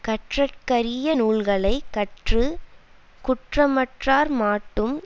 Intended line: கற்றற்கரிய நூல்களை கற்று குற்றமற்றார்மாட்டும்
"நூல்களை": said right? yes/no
yes